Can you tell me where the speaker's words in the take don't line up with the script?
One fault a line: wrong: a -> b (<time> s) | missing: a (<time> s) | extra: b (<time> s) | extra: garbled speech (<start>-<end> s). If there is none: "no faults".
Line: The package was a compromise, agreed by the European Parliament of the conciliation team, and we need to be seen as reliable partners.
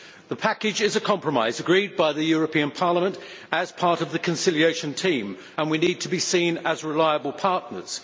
wrong: was -> is (0.8 s)
extra: as part (3.5 s)